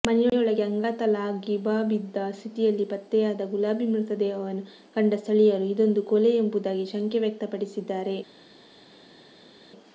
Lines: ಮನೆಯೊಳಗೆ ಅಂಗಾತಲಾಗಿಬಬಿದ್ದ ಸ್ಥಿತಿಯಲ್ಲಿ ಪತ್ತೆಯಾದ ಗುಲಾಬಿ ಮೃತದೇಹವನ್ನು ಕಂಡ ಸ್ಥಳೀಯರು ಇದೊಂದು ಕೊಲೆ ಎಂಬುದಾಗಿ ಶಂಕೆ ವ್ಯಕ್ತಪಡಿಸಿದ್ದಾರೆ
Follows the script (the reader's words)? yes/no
yes